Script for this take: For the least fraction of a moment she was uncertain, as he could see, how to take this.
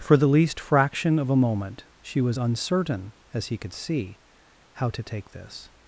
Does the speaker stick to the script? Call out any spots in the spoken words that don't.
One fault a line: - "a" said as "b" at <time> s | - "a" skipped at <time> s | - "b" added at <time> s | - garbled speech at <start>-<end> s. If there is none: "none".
none